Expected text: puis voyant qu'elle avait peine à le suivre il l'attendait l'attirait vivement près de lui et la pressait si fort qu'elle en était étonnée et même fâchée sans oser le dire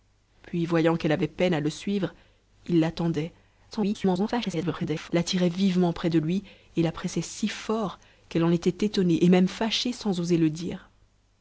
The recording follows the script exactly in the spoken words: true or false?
false